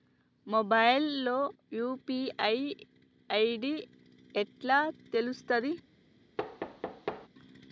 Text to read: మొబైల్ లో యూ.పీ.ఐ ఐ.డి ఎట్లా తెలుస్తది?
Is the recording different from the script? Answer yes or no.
no